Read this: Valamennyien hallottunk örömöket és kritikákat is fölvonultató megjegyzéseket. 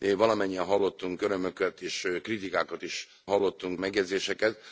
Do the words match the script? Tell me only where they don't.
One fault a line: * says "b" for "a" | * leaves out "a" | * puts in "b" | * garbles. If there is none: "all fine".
* says "hallottunk" for "fölvonultató"